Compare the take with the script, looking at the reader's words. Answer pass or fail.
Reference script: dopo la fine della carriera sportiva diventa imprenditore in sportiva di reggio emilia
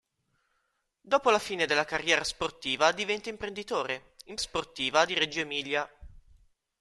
pass